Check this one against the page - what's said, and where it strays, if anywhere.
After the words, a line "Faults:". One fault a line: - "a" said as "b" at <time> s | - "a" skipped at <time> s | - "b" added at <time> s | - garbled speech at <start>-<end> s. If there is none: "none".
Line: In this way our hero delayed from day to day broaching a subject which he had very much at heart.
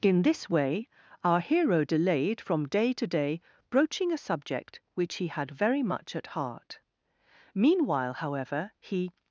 In this way our hero delayed from day to day broaching a subject which he had very much at heart. Meanwhile, however, he
Faults:
- "Meanwhile however he" added at 7.5 s